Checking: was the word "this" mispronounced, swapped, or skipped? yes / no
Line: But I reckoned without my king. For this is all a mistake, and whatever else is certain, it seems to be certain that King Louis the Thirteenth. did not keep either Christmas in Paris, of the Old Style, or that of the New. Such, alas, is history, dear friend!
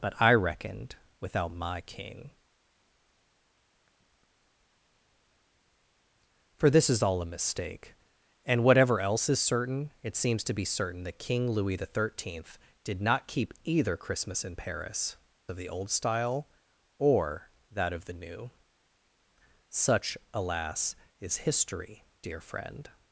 no